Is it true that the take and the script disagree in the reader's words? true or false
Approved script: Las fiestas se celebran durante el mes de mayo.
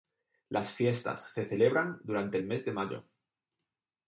false